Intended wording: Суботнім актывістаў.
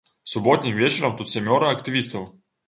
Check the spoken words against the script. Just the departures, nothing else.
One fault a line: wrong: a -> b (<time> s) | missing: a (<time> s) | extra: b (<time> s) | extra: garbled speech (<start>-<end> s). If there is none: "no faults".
extra: вечарам тут сямёра (0.8 s)